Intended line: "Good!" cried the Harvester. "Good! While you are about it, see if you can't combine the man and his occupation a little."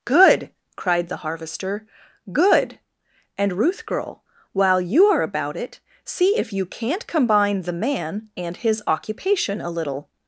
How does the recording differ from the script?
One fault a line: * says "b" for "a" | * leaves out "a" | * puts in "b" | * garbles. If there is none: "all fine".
* puts in "And Ruth girl"